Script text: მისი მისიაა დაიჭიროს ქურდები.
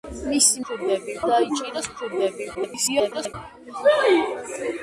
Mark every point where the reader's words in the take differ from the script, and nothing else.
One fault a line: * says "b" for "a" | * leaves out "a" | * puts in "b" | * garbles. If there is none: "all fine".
* says "ქურდები" for "მისიაა"
* garbles